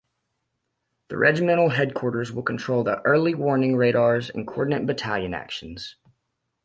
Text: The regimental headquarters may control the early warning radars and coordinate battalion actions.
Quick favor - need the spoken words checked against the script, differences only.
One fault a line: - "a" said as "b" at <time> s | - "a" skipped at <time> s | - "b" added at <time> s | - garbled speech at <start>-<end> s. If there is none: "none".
- "may" said as "will" at 2.3 s